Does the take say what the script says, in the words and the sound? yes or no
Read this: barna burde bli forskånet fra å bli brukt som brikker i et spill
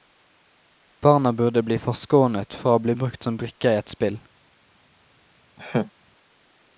no